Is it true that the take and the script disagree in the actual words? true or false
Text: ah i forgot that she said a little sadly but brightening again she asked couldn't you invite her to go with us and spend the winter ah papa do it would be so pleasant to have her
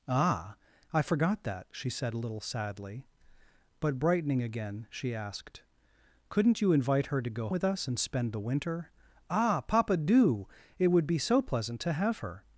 false